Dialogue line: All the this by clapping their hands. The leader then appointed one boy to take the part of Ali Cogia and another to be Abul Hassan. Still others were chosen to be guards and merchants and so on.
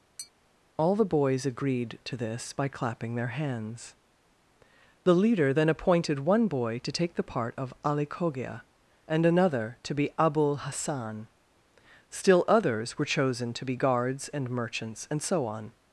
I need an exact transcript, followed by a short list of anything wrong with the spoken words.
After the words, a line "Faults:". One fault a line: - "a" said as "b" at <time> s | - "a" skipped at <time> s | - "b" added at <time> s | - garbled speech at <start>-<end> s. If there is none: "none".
All the boys agreed to this by clapping their hands. The leader then appointed one boy to take the part of Ali Cogia and another to be Abul Hassan. Still others were chosen to be guards and merchants and so on.
Faults:
- "boys agreed to" added at 1.1 s